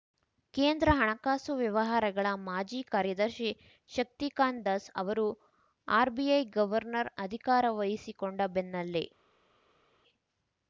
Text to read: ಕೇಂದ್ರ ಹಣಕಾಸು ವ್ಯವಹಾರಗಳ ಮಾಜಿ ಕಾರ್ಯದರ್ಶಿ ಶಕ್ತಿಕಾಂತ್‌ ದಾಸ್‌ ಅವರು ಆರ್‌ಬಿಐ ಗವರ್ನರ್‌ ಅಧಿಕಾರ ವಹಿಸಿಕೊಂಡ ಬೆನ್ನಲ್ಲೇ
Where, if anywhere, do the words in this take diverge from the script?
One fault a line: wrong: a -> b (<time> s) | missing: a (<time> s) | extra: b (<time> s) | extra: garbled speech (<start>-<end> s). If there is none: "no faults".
no faults